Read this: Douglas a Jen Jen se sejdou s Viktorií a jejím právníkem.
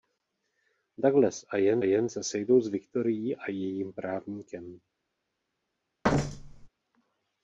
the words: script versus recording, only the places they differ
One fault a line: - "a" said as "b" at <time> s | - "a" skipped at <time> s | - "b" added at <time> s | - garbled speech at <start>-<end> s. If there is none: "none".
none